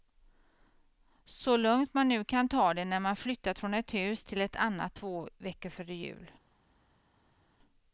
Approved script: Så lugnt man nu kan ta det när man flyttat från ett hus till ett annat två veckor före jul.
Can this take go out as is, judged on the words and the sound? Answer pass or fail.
pass